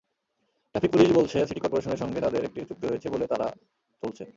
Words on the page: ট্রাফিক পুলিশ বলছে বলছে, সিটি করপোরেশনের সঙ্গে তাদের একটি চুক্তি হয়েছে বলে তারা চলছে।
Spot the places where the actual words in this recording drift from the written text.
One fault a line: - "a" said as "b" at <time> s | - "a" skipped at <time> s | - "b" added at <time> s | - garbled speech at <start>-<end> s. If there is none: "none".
- "বলছে" skipped at 1.4 s